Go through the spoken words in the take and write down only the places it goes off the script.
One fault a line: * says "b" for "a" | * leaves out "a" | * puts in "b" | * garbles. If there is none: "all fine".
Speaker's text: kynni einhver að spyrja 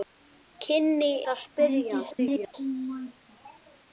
* leaves out "einhver"
* garbles